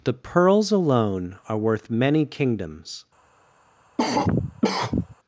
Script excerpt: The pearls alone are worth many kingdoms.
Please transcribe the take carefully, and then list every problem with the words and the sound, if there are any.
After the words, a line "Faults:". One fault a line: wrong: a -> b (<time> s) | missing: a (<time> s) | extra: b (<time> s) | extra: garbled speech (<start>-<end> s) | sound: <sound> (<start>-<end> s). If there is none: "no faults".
The pearls alone are worth many kingdoms.
Faults:
sound: cough (4.0-5.2 s)